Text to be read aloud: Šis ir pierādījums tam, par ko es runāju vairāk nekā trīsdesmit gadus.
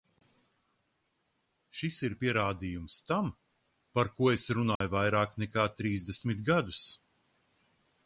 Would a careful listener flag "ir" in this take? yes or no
no